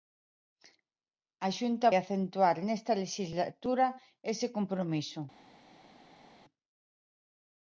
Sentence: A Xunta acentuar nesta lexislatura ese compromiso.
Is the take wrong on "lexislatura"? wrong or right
right